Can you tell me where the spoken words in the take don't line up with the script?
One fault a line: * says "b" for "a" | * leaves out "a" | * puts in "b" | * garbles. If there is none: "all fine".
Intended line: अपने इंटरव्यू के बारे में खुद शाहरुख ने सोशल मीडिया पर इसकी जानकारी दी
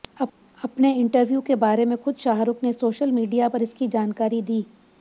all fine